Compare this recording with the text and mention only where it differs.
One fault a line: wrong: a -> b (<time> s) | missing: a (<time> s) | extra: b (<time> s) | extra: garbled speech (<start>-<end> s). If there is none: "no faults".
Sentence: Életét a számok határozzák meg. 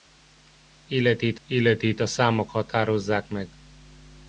extra: életét (1.5 s)